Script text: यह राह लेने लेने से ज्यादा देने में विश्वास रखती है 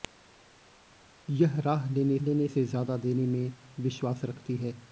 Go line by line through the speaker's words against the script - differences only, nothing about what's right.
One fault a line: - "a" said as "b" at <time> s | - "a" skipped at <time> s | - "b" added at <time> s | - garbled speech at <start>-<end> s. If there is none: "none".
none